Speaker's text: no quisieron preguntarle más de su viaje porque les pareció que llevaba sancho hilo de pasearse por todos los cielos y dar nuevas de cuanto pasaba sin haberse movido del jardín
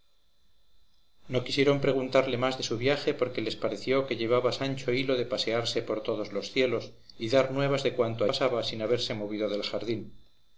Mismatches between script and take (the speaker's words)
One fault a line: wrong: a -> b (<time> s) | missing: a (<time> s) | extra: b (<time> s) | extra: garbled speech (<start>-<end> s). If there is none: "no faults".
no faults